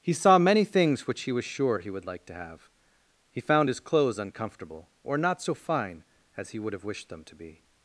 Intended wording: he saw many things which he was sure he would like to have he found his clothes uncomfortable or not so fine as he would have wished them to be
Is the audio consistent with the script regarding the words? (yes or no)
yes